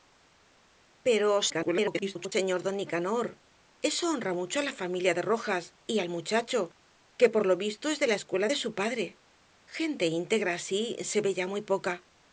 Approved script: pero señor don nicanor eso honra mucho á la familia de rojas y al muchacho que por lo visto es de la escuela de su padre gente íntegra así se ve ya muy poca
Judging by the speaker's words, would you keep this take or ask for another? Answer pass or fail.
fail